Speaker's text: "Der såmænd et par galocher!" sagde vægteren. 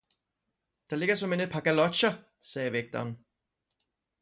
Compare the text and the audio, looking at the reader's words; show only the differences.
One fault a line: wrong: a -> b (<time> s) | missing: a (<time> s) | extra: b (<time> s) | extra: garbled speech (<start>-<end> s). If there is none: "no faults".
extra: ligger (1.0 s)